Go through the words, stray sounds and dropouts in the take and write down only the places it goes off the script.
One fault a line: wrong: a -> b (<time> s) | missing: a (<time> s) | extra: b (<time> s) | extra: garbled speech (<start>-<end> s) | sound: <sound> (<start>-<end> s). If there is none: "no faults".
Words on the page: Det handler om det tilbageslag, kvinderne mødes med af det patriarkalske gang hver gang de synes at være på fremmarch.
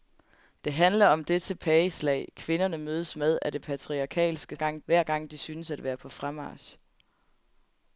no faults